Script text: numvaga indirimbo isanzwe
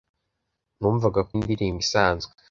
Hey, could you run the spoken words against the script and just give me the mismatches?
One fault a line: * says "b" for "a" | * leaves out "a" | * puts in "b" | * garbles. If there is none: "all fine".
all fine